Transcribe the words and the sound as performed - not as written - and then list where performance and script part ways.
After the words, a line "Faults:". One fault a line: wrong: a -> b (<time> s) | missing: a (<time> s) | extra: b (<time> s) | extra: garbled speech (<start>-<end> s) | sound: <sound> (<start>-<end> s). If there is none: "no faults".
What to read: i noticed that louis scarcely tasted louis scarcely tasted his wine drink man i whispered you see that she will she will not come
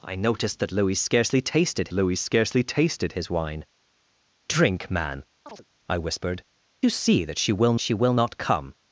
i noticed that louis scarcely tasted louis scarcely tasted his wine drink man i whispered you see that she will she will not come
Faults:
sound: chirp (5.5-5.6 s)